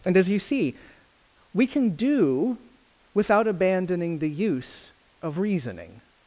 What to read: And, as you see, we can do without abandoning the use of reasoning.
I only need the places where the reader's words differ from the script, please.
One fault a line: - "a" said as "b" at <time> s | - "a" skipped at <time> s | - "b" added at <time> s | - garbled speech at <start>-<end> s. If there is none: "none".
none